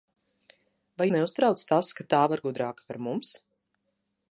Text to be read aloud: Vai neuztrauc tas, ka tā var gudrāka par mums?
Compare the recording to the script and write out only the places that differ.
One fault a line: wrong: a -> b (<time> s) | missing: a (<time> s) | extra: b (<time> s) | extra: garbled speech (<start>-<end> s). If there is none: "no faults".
no faults